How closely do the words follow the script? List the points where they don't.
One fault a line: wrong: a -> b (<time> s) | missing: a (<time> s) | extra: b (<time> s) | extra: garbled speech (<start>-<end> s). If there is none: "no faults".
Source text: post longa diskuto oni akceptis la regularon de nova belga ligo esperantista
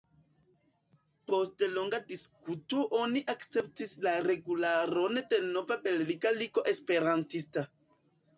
no faults